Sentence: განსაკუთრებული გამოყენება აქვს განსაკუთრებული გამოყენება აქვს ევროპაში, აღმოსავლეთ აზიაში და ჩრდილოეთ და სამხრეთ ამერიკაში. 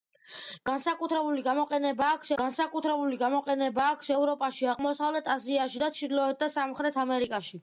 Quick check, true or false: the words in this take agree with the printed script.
true